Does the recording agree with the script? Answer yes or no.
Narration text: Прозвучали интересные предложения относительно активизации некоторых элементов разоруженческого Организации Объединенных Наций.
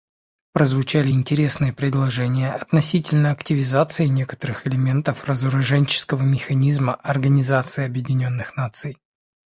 no